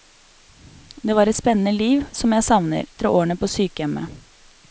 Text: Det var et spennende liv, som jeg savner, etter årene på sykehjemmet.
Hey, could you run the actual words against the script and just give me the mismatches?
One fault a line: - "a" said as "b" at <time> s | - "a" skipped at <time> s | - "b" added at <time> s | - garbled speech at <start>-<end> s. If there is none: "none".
none